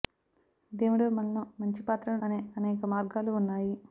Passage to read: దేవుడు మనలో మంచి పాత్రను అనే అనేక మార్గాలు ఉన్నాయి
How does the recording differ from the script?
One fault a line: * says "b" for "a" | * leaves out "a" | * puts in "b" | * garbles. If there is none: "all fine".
all fine